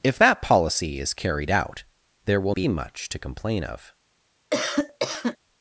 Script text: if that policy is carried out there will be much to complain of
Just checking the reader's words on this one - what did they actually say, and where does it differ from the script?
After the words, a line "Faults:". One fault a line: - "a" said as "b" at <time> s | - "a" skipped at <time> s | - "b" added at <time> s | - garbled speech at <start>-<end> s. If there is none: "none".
if that policy is carried out there will be much to complain of
Faults:
none